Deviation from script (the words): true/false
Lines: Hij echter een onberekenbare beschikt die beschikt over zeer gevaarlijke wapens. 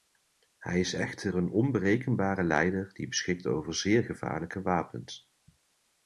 true